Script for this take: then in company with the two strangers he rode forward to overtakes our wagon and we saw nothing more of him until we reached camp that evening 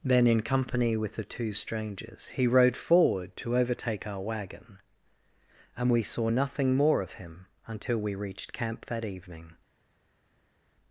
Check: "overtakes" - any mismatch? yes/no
yes